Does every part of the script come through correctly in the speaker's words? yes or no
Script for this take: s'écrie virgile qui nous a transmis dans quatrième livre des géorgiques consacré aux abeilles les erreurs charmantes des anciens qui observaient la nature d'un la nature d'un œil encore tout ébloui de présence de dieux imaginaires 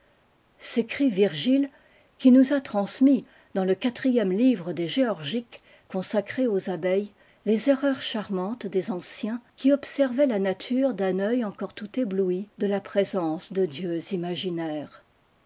no